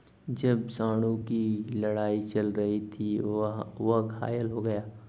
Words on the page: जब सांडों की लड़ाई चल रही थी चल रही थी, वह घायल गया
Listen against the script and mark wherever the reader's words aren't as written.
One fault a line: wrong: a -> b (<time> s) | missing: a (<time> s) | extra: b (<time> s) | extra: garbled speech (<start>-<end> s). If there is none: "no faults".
missing: चल रही थी (3.2 s)
extra: हो (4.5 s)